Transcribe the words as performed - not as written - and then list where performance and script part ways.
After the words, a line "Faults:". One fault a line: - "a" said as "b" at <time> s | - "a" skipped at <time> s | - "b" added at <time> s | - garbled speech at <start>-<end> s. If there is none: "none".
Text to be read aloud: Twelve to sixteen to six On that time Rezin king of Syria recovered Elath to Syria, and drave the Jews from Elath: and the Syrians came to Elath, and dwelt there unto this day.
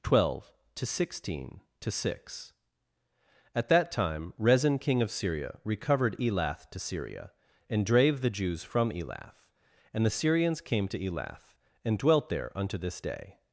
Twelve to sixteen to six At that time Rezin king of Syria recovered Elath to Syria, and drave the Jews from Elath: and the Syrians came to Elath, and dwelt there unto this day.
Faults:
- "On" said as "At" at 3.5 s